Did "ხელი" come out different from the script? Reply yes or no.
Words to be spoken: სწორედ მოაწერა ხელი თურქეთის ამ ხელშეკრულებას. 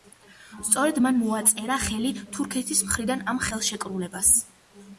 no